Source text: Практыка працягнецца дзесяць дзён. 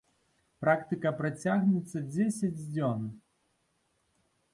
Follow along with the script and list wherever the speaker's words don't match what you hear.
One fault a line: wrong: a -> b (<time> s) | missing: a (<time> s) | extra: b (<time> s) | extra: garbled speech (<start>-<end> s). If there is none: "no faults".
no faults